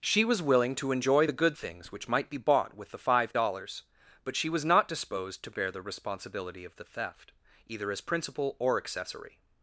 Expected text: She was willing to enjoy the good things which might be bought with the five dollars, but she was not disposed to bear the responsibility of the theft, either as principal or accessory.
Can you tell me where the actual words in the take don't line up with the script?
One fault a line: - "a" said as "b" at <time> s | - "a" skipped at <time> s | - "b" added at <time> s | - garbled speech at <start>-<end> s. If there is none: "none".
none